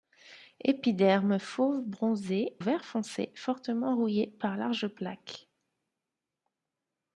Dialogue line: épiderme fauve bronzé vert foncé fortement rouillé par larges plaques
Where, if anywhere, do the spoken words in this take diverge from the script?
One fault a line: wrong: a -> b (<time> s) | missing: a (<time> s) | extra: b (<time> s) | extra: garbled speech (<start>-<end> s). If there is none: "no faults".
no faults